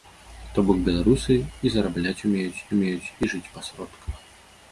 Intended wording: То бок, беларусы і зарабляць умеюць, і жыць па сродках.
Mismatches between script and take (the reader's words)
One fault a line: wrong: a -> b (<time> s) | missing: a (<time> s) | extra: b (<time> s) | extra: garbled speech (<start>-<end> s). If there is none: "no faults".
extra: умеюць (2.8 s)